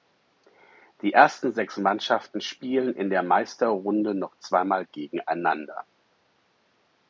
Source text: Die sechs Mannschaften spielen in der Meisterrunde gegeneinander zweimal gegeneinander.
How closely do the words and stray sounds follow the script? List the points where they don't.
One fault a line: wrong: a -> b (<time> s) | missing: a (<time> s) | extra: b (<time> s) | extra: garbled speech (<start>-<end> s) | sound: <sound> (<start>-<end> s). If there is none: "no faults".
extra: ersten (1.1 s)
wrong: gegeneinander -> noch (4.1 s)